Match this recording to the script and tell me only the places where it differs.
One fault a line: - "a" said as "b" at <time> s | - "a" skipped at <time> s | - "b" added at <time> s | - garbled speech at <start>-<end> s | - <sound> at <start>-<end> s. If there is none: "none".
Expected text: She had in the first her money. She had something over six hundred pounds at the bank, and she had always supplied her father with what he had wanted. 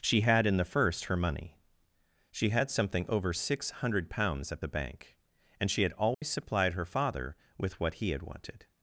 - dropout at 6.1-6.2 s